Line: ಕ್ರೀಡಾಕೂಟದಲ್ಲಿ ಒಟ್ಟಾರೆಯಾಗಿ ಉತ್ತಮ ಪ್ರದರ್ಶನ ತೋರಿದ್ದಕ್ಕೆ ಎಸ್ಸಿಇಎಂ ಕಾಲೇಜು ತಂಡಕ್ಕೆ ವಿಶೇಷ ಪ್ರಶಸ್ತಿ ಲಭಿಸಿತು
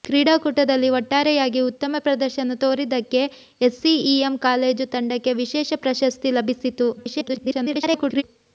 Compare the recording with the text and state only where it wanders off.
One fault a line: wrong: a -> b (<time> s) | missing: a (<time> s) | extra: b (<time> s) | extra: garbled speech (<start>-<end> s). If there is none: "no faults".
extra: garbled speech (7.0-8.2 s)